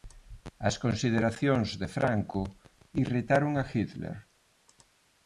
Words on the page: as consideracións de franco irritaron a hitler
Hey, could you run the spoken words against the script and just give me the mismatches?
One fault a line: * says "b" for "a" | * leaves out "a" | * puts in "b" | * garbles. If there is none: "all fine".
all fine